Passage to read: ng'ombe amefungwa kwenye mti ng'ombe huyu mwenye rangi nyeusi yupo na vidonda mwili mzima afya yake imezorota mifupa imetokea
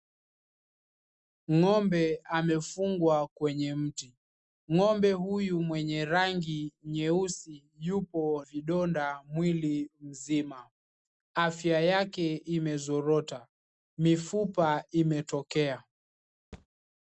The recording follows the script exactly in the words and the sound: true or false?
false